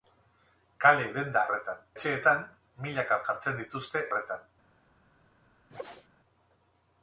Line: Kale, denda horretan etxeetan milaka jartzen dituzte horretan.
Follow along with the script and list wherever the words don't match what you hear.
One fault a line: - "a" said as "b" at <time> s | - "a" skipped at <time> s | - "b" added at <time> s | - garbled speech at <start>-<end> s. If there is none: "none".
none